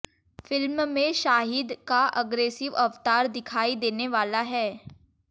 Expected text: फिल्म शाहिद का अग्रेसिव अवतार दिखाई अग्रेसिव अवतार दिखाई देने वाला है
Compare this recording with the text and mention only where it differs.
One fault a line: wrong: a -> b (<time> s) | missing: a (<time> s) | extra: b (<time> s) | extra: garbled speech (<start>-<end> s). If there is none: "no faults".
extra: में (0.9 s)
missing: अग्रेसिव अवतार दिखाई (3.8 s)